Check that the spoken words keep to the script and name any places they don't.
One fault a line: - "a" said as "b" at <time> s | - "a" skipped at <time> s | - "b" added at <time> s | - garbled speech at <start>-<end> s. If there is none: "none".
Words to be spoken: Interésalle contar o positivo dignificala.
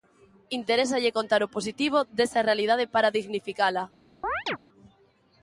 - "desa realidade para" added at 2.2 s